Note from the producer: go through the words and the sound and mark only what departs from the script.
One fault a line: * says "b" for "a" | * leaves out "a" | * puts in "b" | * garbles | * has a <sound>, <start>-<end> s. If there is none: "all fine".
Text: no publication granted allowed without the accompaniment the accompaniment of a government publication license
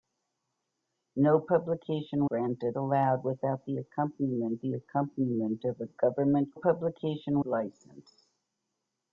all fine